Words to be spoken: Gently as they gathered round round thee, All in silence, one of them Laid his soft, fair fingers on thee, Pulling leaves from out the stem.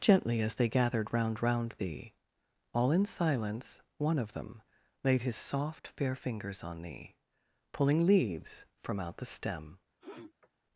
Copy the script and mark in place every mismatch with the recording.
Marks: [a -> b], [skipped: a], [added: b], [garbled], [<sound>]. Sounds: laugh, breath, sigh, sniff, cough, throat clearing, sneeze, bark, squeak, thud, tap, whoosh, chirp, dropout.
Gently as they gathered round round thee, All in silence, one of them Laid his soft, fair fingers on thee, Pulling leaves from out the stem. [sniff]